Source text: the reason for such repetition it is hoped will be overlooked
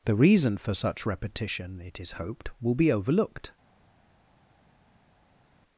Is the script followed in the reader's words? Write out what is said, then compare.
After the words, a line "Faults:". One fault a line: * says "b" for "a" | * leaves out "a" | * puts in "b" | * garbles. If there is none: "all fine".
the reason for such repetition it is hoped will be overlooked
Faults:
all fine